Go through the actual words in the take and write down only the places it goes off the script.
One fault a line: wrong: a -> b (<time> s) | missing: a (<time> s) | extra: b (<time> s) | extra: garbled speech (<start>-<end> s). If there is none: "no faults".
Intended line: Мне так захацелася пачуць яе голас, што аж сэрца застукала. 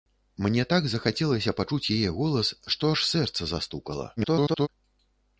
extra: garbled speech (4.2-4.7 s)